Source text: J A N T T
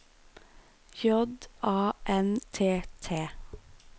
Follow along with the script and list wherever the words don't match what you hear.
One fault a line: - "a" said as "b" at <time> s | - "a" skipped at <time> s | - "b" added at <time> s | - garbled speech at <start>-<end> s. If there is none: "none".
none